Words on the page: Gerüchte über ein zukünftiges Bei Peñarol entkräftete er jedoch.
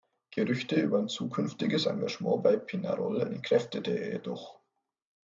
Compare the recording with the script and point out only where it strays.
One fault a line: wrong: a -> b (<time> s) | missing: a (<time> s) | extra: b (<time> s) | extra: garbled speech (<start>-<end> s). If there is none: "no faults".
extra: Engagement (1.9 s)